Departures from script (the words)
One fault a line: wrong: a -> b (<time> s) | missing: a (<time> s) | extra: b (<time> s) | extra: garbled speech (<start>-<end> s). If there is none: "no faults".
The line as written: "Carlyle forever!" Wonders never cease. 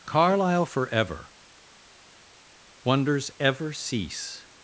wrong: never -> ever (3.4 s)